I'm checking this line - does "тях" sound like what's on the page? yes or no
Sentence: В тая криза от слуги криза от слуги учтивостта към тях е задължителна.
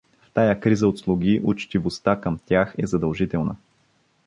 yes